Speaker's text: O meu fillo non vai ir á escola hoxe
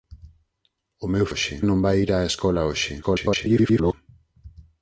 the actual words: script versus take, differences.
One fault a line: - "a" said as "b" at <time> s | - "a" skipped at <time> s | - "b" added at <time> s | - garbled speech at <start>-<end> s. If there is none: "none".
- "fillo" said as "hoxe" at 1.3 s
- garbled speech at 3.0-3.9 s